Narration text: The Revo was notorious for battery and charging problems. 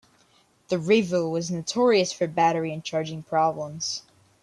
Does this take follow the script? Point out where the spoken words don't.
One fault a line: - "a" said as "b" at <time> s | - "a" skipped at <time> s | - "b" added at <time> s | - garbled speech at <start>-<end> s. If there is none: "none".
none